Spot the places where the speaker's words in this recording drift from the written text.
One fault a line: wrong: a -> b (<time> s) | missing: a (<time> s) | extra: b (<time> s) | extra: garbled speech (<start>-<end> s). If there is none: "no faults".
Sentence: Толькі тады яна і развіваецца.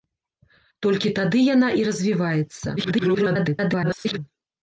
extra: garbled speech (2.8-4.2 s)